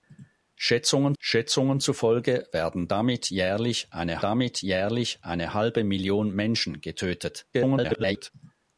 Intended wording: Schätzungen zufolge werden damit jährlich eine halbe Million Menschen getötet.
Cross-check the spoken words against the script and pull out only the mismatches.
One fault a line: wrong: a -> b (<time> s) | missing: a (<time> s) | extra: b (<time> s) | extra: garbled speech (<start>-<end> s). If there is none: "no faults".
extra: schätzungen (1.2 s)
extra: damit jährlich eine (4.2 s)
extra: garbled speech (7.5-8.3 s)